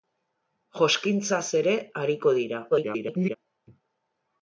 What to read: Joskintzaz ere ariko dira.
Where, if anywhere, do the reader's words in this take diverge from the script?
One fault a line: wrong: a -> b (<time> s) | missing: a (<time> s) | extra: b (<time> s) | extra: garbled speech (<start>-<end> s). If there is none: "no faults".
extra: garbled speech (2.7-3.4 s)